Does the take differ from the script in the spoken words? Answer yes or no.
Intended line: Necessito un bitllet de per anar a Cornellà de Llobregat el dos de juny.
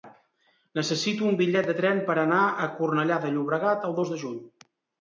yes